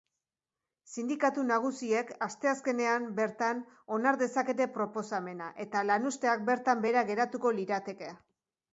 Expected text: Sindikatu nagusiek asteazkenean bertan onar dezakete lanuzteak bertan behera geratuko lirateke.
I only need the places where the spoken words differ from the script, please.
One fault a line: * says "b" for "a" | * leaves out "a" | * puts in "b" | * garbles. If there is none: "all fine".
* puts in "proposamena eta"